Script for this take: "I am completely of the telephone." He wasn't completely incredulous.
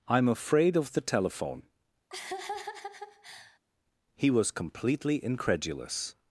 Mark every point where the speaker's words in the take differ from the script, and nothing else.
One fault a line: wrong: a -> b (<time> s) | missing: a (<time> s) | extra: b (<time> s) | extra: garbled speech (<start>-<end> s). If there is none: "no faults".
wrong: completely -> afraid (0.3 s)
wrong: wasn't -> was (4.3 s)